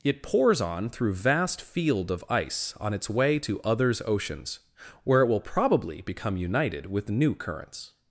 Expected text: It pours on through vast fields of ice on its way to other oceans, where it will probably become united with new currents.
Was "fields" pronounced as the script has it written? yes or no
no